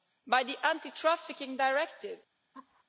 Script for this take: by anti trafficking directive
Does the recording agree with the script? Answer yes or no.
no